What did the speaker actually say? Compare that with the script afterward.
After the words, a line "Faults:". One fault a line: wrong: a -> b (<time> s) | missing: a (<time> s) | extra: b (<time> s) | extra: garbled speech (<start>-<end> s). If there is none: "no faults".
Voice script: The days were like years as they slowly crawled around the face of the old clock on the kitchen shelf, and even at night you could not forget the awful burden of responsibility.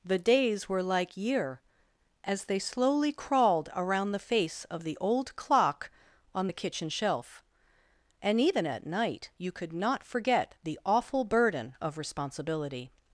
The days were like year as they slowly crawled around the face of the old clock on the kitchen shelf, and even at night you could not forget the awful burden of responsibility.
Faults:
wrong: years -> year (1.1 s)